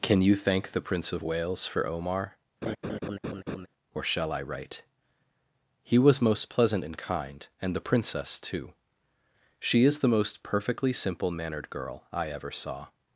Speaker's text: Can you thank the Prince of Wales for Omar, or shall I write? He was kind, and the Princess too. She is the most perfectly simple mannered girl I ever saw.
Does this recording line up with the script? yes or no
no